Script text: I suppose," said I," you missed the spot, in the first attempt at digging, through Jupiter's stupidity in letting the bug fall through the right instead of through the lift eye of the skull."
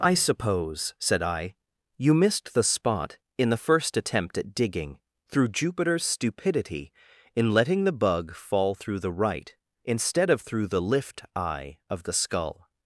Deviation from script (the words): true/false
false